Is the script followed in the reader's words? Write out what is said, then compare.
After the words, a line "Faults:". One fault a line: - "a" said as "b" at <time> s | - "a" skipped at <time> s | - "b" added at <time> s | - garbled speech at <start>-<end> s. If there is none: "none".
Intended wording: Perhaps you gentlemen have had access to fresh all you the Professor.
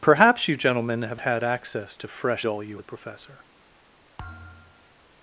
Perhaps you gentlemen have had access to fresh all you the Professor.
Faults:
none